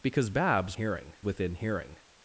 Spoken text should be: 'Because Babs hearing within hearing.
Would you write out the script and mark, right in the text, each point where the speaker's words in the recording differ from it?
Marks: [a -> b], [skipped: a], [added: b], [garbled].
'Because Babs hearing within hearing.